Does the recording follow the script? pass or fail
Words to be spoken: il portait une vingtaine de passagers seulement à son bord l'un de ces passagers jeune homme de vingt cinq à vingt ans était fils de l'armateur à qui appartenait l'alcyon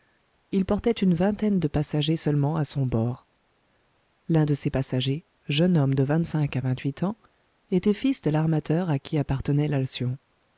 fail